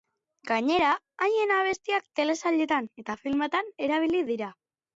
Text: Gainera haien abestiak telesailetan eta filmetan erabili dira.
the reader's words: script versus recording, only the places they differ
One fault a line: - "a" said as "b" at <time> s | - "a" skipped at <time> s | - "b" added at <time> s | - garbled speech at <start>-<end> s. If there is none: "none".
none